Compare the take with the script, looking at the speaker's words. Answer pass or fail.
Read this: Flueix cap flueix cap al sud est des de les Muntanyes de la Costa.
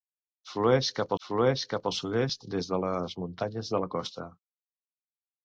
pass